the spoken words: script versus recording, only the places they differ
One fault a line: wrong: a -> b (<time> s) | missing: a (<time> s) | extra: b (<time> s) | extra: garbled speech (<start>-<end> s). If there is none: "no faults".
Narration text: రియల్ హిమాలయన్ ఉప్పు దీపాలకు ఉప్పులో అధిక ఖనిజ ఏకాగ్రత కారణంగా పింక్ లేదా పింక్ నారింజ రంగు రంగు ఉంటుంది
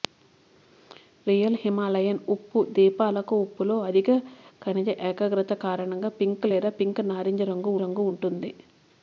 no faults